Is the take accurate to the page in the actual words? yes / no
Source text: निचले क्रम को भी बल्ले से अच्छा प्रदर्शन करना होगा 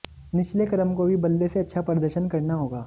yes